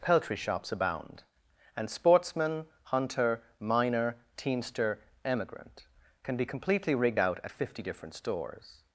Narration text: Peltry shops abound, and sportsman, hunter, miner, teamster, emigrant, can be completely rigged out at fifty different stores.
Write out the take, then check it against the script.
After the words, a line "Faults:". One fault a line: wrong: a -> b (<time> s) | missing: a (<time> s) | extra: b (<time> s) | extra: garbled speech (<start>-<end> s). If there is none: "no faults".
Peltry shops abound, and sportsman, hunter, miner, teamster, emigrant, can be completely rigged out at fifty different stores.
Faults:
no faults